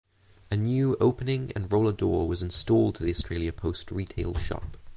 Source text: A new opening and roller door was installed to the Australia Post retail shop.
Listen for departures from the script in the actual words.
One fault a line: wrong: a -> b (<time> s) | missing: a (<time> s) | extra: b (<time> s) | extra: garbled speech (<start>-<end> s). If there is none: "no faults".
no faults